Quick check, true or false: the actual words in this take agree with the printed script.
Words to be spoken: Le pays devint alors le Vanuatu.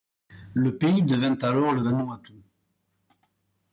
true